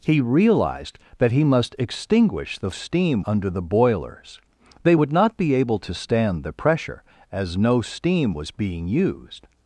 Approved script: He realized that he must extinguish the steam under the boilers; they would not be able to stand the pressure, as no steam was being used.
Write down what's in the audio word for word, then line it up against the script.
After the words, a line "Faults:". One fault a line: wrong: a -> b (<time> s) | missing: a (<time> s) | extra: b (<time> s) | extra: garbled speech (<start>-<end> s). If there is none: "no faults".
He realized that he must extinguish the steam under the boilers; they would not be able to stand the pressure, as no steam was being used.
Faults:
no faults